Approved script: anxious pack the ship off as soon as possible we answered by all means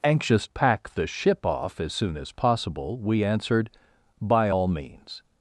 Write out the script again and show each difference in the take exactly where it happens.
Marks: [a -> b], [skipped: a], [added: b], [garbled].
anxious pack the ship off as soon as possible we answered by all means